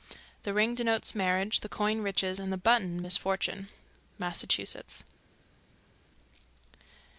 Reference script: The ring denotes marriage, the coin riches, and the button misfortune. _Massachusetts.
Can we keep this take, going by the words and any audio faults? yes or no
yes